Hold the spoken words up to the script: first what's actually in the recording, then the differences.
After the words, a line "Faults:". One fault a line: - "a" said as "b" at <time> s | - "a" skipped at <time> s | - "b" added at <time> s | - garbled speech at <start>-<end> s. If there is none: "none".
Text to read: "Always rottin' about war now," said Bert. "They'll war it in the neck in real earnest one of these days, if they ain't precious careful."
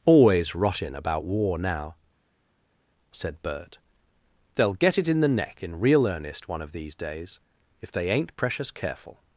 "Always rottin' about war now," said Bert. "They'll get it in the neck in real earnest one of these days, if they ain't precious careful."
Faults:
- "war" said as "get" at 4.7 s